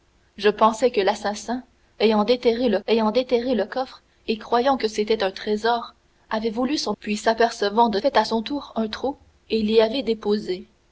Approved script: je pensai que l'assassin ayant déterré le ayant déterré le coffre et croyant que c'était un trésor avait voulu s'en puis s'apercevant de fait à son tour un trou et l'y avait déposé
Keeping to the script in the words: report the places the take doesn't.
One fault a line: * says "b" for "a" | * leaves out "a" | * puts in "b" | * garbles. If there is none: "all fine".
all fine